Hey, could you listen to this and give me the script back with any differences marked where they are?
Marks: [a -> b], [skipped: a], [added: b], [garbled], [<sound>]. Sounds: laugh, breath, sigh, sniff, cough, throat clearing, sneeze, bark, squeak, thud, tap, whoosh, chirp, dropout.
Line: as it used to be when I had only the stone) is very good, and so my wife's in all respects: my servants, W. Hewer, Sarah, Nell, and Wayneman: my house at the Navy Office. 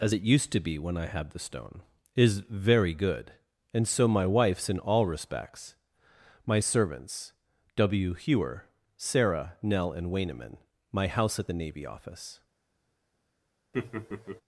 as it used to be when I had [skipped: only] the stone) is very good, and so my wife's in all respects: my servants, W. Hewer, Sarah, Nell, and Wayneman: my house at the Navy Office. [laugh]